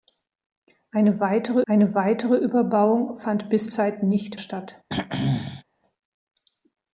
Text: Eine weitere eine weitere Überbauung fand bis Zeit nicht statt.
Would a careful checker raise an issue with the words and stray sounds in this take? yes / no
yes